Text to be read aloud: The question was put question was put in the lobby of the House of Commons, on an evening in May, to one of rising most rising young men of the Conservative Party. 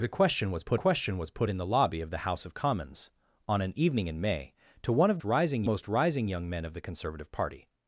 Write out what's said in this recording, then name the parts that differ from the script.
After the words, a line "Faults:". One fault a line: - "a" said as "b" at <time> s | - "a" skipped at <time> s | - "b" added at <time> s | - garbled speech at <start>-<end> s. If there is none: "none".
The question was put question was put in the lobby of the House of Commons, on an evening in May, to one of rising most rising young men of the Conservative Party.
Faults:
none